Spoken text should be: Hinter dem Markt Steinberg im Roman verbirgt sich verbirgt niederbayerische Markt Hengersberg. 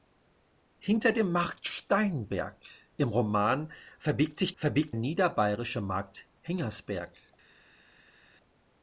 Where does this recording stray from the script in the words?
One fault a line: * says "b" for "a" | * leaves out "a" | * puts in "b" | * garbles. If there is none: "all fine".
all fine